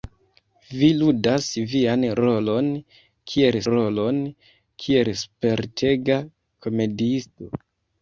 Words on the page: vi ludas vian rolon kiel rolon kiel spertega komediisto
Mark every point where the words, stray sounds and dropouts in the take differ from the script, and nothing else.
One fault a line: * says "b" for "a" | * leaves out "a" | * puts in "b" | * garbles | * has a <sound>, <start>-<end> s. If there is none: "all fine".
all fine